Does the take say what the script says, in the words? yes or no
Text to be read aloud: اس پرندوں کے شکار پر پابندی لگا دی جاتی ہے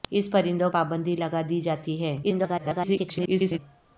no